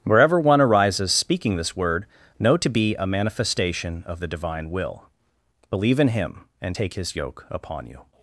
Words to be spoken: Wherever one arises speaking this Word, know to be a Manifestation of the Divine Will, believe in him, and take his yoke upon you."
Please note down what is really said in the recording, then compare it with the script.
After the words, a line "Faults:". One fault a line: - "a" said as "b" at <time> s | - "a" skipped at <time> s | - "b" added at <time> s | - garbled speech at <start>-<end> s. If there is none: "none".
Wherever one arises speaking this Word, know to be a Manifestation of the Divine Will, believe in him, and take his yoke upon you."
Faults:
none